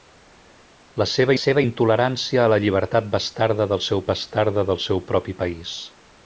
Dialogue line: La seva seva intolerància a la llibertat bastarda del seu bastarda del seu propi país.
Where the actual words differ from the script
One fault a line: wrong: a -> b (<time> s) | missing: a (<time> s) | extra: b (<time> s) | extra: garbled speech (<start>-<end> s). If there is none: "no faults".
no faults